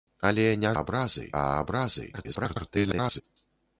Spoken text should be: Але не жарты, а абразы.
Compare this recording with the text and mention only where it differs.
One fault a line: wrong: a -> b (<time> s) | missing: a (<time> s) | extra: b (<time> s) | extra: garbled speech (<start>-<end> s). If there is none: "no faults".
wrong: жарты -> абразы (0.8 s)
extra: garbled speech (2.1-3.2 s)